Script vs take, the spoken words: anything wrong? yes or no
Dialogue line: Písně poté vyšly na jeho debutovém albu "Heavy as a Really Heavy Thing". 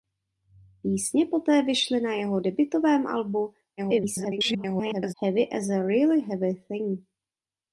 yes